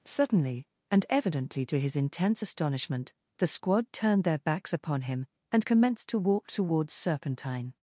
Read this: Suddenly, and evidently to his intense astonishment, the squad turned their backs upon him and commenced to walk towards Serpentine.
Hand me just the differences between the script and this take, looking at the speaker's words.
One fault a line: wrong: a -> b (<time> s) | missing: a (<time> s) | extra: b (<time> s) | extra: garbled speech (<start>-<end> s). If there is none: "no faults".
no faults